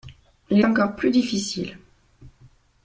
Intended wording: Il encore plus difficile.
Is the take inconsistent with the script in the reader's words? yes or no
no